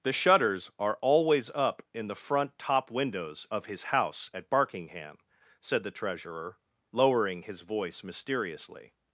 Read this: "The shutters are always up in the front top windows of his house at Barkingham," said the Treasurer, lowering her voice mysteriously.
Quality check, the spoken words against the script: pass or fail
fail